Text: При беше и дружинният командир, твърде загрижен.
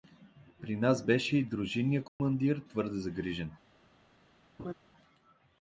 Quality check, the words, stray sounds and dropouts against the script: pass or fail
fail